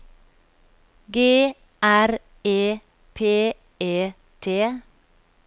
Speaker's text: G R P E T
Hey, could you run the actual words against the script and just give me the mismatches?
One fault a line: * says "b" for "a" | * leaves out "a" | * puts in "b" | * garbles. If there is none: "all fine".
* puts in "E"